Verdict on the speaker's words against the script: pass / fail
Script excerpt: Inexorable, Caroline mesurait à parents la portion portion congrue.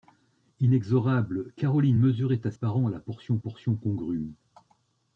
pass